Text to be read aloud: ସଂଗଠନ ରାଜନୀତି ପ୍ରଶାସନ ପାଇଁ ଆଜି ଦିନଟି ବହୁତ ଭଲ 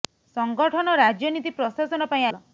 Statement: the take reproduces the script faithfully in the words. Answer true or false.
false